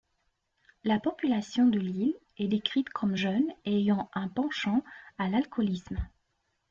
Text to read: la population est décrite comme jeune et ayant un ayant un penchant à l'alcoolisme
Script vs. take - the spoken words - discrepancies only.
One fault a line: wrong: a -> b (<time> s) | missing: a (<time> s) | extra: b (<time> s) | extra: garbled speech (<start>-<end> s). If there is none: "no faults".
extra: de l'île (1.7 s)
missing: ayant un (4.3 s)